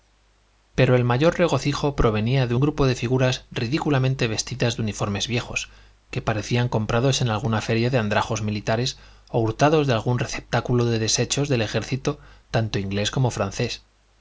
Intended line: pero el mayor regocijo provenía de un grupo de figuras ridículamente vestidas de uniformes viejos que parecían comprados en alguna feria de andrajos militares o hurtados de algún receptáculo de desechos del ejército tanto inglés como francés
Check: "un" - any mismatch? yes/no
yes